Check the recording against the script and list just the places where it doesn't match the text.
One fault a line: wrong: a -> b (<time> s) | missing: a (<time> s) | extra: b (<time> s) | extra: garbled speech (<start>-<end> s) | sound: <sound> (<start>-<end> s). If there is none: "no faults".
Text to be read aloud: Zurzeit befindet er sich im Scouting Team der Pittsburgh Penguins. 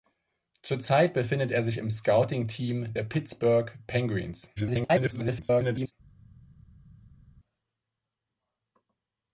extra: garbled speech (4.6-5.9 s)